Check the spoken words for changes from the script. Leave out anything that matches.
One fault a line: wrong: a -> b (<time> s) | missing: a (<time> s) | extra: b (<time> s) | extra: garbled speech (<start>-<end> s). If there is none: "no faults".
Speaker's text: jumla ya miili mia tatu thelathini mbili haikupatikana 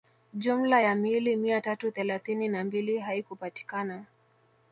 extra: na (2.5 s)